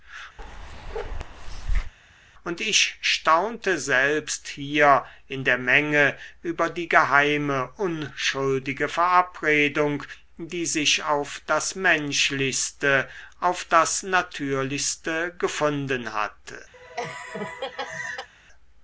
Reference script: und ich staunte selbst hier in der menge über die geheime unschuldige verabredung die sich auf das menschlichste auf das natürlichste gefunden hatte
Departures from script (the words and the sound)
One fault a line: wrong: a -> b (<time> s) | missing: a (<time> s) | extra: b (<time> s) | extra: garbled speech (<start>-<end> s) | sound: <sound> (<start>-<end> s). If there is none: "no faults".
sound: bark (0.4-1.9 s)
sound: laugh (16.7-18.3 s)